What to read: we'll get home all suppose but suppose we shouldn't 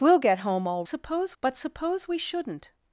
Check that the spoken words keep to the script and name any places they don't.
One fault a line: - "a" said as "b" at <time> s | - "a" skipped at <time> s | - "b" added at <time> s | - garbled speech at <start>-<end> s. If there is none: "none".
none